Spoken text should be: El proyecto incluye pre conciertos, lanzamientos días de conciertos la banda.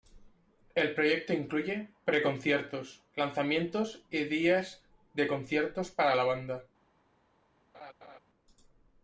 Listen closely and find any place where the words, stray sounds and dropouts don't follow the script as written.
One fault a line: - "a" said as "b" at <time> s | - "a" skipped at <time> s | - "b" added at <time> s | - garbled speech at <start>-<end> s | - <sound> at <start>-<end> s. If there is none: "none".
- "y" added at 4.1 s
- "para" added at 5.9 s
- laugh at 7.7-8.2 s